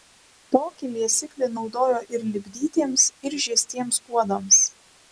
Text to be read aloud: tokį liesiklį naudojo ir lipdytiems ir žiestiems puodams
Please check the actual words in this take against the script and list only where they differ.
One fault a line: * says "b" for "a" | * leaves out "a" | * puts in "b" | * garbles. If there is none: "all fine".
all fine